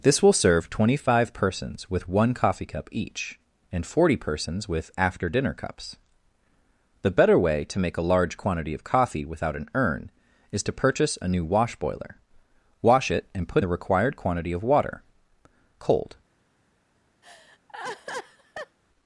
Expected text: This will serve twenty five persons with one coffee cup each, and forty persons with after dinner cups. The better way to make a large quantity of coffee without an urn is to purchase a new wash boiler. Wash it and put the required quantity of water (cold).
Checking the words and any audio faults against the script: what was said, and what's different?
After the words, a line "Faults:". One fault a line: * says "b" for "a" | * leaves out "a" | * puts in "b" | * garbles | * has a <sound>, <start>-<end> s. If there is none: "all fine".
This will serve twenty five persons with one coffee cup each, and forty persons with after dinner cups. The better way to make a large quantity of coffee without an urn is to purchase a new wash boiler. Wash it and put the required quantity of water (cold).
Faults:
* has a laugh, 17.2-18.8 s